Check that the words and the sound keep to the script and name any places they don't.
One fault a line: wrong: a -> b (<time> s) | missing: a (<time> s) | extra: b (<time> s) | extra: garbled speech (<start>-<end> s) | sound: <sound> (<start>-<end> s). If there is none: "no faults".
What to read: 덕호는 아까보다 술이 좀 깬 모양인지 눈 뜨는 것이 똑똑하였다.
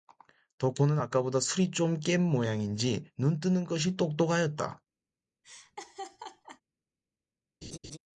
sound: laugh (5.4-6.6 s)
sound: laugh (7.6-8.0 s)